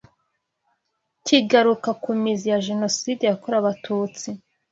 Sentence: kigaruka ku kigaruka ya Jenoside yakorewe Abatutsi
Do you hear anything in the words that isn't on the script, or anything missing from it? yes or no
yes